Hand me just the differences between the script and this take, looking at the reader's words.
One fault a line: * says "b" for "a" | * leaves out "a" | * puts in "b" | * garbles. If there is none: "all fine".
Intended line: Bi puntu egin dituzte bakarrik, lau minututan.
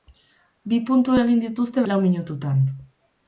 * leaves out "bakarrik"